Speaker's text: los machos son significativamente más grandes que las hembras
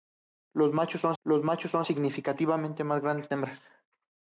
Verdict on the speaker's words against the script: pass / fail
fail